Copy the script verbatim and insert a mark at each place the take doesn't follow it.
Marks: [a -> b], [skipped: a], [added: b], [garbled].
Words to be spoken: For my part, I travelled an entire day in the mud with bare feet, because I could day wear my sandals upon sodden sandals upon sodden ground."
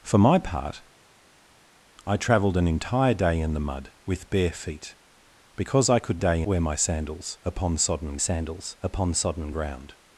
For my part, I travelled an entire day in the mud with bare feet, because I could day wear my sandals upon sodden sandals upon sodden ground."